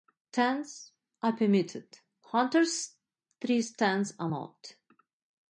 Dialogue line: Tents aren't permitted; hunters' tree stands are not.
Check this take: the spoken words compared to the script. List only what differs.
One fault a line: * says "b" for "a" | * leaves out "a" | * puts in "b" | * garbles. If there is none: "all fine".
* says "are" for "aren't"